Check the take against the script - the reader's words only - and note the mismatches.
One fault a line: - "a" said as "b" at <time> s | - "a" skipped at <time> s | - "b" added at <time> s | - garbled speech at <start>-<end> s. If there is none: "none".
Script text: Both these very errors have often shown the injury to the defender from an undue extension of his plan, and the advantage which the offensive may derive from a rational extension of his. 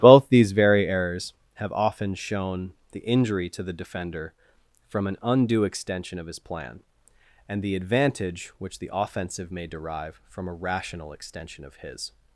none